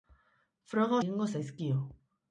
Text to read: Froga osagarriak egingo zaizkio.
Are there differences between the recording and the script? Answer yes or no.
yes